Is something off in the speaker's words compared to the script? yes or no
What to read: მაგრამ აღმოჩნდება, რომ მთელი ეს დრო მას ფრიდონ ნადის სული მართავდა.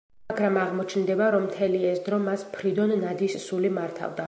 no